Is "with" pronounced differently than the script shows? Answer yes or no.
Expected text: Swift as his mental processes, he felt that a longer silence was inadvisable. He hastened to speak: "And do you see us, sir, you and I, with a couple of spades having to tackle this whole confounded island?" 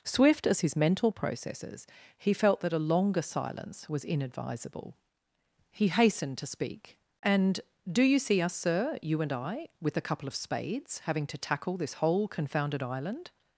no